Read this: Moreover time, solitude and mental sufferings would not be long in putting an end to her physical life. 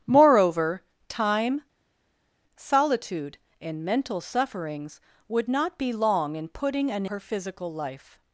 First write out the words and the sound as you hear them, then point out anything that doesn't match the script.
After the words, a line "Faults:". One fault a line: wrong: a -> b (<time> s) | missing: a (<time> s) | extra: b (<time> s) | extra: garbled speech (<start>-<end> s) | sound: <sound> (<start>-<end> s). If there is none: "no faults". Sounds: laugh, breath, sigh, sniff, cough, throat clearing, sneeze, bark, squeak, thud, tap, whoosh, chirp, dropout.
Moreover time, solitude and mental sufferings would not be long in putting an her physical life.
Faults:
missing: end to (7.1 s)